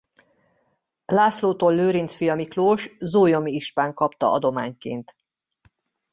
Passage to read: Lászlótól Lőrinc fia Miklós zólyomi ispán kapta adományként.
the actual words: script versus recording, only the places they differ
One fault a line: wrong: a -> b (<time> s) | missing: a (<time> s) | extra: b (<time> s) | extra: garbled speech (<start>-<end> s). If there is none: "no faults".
no faults